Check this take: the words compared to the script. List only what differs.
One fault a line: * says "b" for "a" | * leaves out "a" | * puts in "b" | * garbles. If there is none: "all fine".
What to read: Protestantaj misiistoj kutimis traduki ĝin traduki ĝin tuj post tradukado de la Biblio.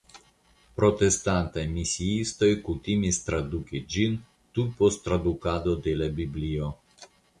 * leaves out "traduki ĝin"